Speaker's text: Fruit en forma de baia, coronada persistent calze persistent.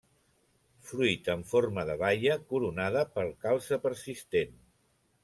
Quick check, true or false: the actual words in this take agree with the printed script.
false